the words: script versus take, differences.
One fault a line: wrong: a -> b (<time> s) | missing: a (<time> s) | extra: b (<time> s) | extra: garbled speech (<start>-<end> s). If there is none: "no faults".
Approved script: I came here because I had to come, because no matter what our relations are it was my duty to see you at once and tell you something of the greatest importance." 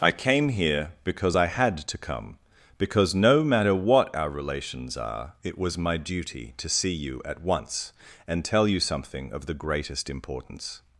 no faults